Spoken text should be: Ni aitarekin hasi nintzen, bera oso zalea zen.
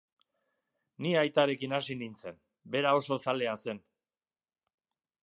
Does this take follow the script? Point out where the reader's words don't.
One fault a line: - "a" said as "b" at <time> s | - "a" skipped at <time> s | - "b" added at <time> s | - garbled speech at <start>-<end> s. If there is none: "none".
none